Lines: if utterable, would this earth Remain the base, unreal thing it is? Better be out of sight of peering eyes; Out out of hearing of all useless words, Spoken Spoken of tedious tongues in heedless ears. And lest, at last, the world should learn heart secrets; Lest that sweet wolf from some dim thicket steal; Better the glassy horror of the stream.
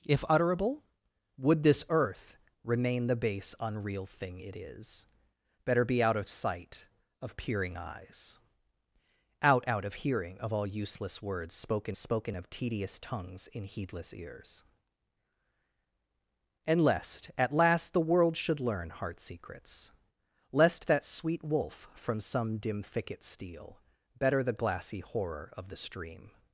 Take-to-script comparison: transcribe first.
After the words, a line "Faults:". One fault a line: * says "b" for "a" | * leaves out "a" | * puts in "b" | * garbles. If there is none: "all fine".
if utterable, would this earth Remain the base, unreal thing it is? Better be out of sight of peering eyes; Out out of hearing of all useless words, Spoken Spoken of tedious tongues in heedless ears. And lest, at last, the world should learn heart secrets; Lest that sweet wolf from some dim thicket steal; Better the glassy horror of the stream.
Faults:
all fine